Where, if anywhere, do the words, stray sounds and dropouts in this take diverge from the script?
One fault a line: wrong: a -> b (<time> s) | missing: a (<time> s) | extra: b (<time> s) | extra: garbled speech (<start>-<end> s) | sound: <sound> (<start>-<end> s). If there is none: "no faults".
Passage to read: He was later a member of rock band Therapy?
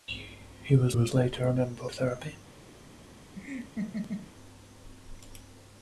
extra: was (0.9 s)
missing: of rock band (1.9 s)
sound: laugh (3.4-4.3 s)